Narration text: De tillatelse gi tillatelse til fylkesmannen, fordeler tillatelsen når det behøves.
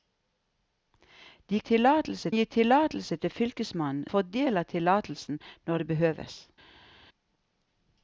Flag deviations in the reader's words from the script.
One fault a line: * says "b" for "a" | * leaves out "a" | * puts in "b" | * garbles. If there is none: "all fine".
all fine